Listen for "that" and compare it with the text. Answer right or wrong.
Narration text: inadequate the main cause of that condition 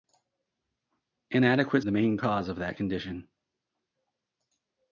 right